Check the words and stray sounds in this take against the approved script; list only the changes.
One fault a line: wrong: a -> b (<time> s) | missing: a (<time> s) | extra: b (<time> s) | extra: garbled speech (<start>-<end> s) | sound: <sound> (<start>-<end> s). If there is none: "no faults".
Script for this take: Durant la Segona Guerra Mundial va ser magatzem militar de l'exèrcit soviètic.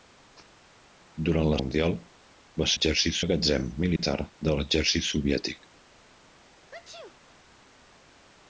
missing: Segona Guerra (1.6 s)
wrong: ser -> l'exèrcit (2.7 s)
sound: dropout (4.0-4.0 s)
sound: sneeze (6.7-7.2 s)